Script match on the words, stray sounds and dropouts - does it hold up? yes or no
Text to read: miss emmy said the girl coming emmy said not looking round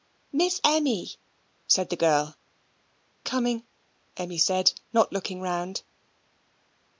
yes